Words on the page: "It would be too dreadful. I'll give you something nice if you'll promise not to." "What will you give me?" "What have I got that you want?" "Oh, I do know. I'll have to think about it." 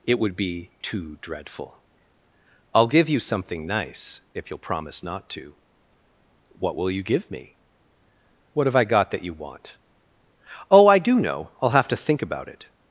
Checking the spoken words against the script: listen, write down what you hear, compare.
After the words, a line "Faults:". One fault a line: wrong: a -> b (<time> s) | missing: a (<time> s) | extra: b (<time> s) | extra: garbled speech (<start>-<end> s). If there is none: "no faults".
"It would be too dreadful. I'll give you something nice if you'll promise not to." "What will you give me?" "What have I got that you want?" "Oh, I do know. I'll have to think about it."
Faults:
no faults